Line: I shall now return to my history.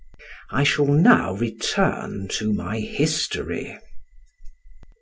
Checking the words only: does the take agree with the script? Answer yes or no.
yes